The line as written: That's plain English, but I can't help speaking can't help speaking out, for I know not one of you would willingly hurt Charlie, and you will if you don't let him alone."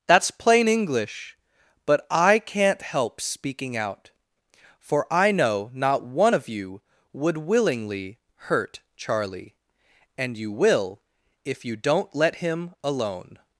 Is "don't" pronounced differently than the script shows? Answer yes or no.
no